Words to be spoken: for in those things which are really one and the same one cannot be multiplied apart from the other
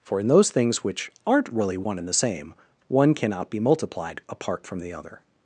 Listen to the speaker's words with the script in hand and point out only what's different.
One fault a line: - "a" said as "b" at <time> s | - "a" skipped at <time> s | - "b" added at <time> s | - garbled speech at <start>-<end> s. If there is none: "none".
- "are" said as "aren't" at 1.2 s